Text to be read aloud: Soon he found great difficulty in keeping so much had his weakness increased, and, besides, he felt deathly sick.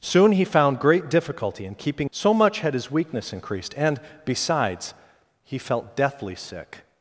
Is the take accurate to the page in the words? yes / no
yes